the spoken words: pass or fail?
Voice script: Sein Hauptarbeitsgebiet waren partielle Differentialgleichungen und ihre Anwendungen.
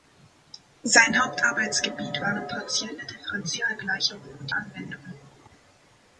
fail